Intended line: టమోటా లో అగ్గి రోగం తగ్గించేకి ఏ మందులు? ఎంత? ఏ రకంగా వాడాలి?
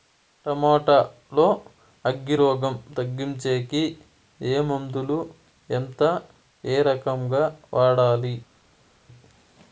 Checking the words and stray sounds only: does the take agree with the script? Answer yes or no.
yes